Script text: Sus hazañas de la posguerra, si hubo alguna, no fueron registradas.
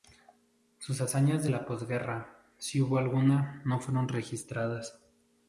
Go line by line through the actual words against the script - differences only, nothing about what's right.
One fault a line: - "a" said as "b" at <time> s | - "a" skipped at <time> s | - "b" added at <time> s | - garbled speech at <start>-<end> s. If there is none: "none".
none